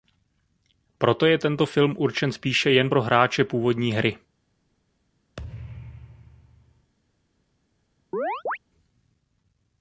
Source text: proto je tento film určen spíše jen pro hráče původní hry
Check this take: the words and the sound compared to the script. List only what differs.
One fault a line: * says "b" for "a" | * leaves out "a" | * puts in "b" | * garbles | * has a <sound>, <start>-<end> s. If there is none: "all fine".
* has a thud, 5.4-6.9 s
* has a chirp, 8.1-8.6 s